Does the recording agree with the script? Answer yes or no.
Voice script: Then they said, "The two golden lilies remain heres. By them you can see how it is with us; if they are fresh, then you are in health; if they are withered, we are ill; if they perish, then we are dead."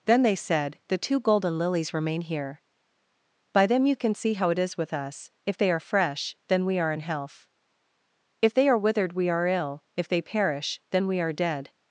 no